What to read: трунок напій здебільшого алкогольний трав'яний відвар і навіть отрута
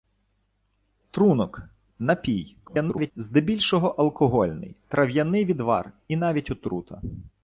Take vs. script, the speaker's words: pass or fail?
fail